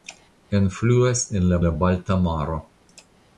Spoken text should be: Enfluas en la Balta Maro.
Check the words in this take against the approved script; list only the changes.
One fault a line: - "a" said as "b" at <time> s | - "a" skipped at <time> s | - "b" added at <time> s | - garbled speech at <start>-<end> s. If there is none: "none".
- "la" added at 1.6 s